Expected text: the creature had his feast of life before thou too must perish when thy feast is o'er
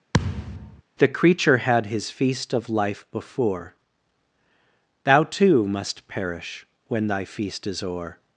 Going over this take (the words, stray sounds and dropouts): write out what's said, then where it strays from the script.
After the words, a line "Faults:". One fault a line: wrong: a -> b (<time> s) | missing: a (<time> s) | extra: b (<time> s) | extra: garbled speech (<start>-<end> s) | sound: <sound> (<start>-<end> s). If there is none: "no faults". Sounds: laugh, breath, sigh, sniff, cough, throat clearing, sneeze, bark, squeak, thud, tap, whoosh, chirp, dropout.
the creature had his feast of life before thou too must perish when thy feast is o'er
Faults:
sound: thud (0.1-0.8 s)